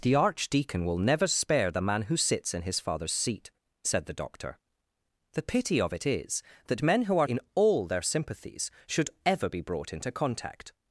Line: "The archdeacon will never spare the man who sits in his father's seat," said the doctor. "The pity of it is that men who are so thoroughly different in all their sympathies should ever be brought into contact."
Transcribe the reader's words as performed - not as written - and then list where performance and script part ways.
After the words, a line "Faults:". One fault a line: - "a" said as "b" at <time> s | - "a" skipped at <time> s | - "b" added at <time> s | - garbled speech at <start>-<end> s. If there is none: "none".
"The archdeacon will never spare the man who sits in his father's seat," said the doctor. "The pity of it is that men who are in all their sympathies should ever be brought into contact."
Faults:
- "so thoroughly different" skipped at 7.3 s